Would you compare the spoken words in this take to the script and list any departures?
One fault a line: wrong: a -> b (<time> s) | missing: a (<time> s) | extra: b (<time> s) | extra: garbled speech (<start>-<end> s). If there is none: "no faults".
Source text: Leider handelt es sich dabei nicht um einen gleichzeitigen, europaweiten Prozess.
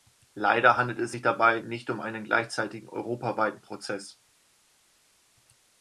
no faults